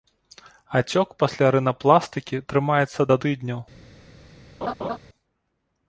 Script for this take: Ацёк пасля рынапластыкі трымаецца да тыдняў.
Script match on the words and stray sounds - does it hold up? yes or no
no